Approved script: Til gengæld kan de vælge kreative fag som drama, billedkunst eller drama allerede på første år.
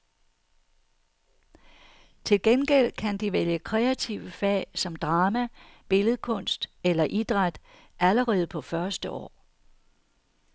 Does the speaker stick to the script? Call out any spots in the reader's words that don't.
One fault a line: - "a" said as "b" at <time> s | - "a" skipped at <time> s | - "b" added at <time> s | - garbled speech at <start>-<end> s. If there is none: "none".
- "drama" said as "idræt" at 7.0 s